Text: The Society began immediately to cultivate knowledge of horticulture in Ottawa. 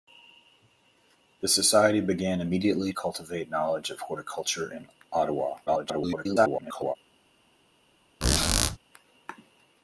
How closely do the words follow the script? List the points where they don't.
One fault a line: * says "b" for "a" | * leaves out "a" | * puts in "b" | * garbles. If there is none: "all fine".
* leaves out "to"
* garbles